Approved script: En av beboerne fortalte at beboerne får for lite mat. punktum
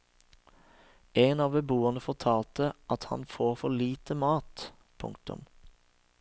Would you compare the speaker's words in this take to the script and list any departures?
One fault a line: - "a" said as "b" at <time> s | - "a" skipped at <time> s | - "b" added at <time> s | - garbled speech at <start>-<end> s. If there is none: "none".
- "beboerne" said as "han" at 3.1 s